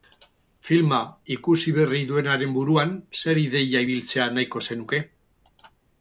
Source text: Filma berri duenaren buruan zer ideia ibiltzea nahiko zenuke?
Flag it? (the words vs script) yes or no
yes